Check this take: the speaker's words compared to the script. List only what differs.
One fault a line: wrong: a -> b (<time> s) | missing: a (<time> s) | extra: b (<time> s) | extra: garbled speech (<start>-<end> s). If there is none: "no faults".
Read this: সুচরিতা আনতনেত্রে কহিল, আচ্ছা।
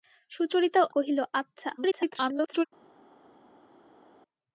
missing: আনতনেত্রে (0.8 s)
extra: garbled speech (1.8-2.7 s)